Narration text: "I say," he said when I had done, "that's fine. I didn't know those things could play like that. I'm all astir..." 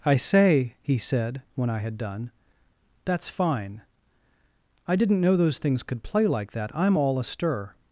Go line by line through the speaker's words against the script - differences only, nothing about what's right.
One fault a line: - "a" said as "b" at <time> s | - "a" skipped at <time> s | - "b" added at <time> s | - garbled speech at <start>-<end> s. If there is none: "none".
none